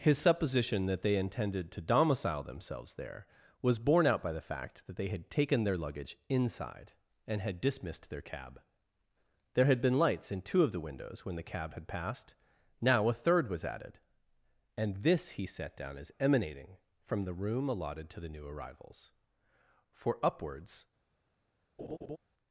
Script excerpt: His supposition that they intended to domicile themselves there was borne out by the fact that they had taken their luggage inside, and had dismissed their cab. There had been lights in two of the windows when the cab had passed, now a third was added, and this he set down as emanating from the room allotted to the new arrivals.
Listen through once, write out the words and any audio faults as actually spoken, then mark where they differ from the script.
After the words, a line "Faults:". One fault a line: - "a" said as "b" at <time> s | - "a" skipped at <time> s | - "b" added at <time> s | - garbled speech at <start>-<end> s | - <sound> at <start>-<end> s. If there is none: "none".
His supposition that they intended to domicile themselves there was borne out by the fact that they had taken their luggage inside, and had dismissed their cab. There had been lights in two of the windows when the cab had passed, now a third was added, and this he set down as emanating from the room allotted to the new arrivals. For upwards
Faults:
- "For upwards" added at 19.9 s
- laugh at 21.8-22.2 s